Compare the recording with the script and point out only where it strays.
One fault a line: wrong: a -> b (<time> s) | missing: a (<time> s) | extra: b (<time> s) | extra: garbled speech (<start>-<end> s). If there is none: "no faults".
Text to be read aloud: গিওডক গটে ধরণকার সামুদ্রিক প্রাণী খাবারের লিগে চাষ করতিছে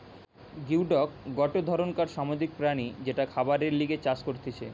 extra: যেটা (3.0 s)